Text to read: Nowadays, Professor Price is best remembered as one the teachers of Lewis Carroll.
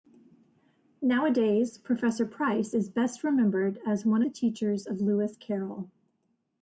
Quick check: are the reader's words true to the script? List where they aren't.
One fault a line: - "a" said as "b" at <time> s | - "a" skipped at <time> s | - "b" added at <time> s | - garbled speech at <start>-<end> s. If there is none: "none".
none